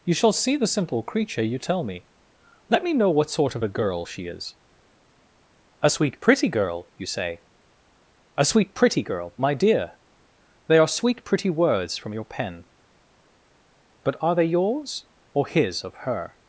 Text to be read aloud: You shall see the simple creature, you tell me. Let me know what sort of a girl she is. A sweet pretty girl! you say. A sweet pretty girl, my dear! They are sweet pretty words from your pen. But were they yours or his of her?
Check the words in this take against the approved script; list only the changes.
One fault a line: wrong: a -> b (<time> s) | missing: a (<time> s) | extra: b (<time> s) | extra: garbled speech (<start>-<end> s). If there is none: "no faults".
wrong: were -> are (14.2 s)